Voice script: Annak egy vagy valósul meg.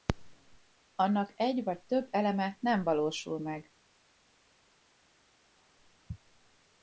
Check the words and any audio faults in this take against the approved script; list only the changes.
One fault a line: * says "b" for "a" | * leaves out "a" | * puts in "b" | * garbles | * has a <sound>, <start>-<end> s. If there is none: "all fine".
* puts in "több eleme nem"